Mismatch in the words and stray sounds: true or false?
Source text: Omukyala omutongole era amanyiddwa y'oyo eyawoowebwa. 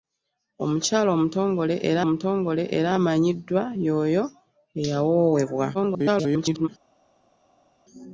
true